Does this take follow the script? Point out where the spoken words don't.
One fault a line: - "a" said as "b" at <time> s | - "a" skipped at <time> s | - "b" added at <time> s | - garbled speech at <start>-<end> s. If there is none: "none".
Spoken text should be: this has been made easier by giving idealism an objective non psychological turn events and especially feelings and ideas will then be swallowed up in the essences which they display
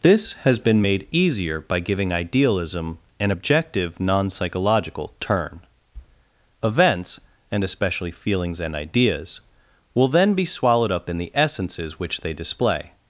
none